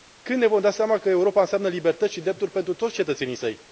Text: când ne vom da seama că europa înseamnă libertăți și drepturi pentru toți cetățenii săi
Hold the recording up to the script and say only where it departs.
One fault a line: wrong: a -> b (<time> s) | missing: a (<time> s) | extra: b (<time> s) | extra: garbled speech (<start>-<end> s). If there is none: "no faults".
no faults